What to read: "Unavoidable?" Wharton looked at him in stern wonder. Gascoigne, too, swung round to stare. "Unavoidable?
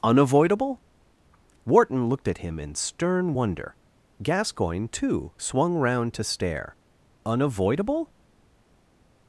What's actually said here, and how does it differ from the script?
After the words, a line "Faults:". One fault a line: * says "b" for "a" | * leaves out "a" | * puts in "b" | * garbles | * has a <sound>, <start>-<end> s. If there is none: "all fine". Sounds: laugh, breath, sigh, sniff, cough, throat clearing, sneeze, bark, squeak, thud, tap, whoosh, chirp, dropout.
"Unavoidable?" Wharton looked at him in stern wonder. Gascoigne, too, swung round to stare. "Unavoidable?
Faults:
all fine